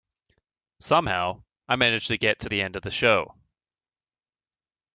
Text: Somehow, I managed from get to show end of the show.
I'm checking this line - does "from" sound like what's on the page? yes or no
no